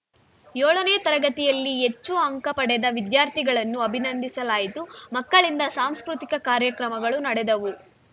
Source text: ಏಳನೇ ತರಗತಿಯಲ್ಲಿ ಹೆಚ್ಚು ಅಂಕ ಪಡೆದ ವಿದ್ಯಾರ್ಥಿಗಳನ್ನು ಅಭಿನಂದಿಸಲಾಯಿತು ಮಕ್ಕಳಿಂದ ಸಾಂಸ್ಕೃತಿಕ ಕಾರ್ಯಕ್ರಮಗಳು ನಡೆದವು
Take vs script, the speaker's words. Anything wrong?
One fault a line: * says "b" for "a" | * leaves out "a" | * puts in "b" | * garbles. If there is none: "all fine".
all fine